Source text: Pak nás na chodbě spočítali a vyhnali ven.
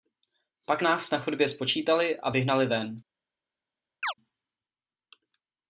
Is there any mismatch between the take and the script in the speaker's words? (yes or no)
no